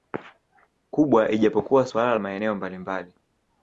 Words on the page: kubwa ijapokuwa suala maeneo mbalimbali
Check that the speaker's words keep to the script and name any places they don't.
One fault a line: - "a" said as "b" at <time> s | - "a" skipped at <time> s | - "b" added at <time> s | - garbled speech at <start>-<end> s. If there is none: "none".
none